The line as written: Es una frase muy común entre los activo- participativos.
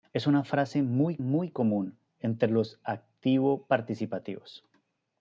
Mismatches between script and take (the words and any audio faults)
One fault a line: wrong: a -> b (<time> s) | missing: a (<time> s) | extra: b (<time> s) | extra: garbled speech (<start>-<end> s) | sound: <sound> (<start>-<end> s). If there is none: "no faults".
extra: muy (1.2 s)